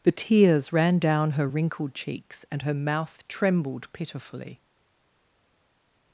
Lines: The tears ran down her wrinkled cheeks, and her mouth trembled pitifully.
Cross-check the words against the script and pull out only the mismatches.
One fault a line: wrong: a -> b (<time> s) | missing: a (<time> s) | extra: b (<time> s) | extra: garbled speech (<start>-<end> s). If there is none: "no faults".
no faults